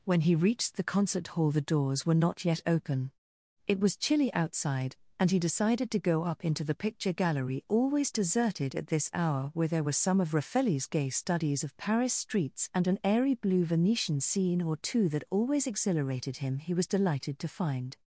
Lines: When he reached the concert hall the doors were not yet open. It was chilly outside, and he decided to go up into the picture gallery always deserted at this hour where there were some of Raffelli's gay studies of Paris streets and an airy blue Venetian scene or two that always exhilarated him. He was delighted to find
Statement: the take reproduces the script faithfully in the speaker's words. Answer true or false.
true